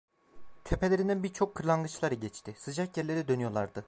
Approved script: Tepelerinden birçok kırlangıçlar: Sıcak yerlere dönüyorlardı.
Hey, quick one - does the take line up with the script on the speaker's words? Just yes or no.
no